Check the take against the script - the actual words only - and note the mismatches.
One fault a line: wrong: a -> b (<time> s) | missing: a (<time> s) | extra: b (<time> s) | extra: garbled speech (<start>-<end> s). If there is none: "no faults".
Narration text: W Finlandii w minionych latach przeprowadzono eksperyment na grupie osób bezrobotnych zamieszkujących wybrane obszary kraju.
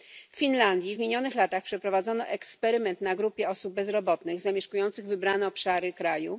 no faults